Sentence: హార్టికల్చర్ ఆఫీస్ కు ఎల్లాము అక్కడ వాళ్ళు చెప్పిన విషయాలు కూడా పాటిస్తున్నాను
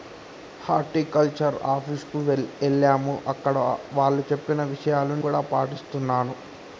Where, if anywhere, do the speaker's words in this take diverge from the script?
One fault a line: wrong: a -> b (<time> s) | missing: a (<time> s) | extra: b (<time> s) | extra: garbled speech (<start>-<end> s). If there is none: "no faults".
no faults